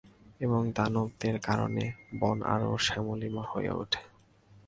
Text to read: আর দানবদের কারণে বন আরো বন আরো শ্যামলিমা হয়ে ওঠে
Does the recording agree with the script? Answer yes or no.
no